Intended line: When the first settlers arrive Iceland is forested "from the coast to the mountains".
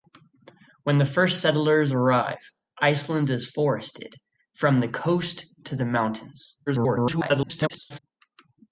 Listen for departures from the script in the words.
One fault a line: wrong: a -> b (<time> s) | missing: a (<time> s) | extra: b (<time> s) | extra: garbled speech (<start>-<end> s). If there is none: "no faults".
extra: garbled speech (6.7-8.0 s)